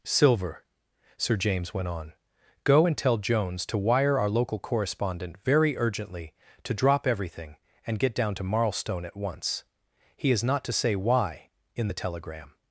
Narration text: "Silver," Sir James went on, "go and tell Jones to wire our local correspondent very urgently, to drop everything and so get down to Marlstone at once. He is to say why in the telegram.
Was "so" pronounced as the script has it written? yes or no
no